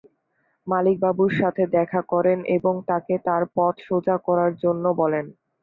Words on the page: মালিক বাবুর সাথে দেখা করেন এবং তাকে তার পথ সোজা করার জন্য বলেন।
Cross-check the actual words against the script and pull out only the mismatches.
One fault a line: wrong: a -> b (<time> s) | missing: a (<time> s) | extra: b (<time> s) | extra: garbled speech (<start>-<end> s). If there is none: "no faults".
no faults